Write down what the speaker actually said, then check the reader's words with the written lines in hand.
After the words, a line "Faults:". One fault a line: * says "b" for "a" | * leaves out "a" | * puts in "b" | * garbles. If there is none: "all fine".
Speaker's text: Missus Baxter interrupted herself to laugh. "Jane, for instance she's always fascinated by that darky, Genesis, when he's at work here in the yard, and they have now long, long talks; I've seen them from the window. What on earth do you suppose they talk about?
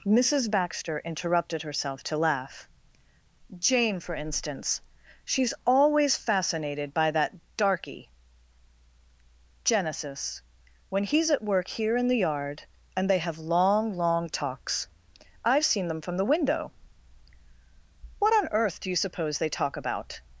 Missus Baxter interrupted herself to laugh. "Jane, for instance she's always fascinated by that darky, Genesis, when he's at work here in the yard, and they have long, long talks; I've seen them from the window. What on earth do you suppose they talk about?
Faults:
* leaves out "now"